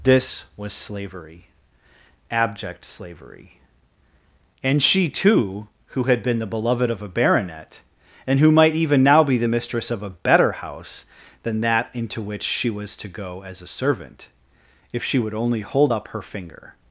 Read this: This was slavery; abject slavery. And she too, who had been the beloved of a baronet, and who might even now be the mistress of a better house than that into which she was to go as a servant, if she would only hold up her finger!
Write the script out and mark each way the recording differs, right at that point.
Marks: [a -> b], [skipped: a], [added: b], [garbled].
This was slavery; abject slavery. And she too, who had been the beloved of a baronet, and who might even now be the mistress of a better house than that into which she was to go as a servant, if she would only hold up her finger!